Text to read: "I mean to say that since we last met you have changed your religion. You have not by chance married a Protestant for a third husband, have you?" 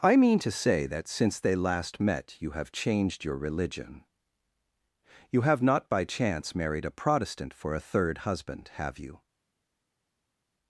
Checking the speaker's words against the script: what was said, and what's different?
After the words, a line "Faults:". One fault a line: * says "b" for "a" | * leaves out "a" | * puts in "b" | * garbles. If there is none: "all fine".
"I mean to say that since they last met you have changed your religion. You have not by chance married a Protestant for a third husband, have you?"
Faults:
* says "they" for "we"